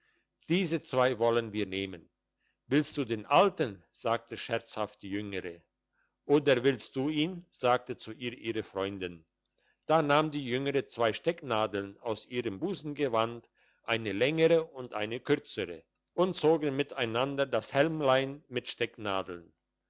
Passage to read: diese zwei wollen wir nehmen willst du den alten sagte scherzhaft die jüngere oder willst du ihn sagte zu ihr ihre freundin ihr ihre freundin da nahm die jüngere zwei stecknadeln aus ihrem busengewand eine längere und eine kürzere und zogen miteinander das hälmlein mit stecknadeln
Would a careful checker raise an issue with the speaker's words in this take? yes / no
yes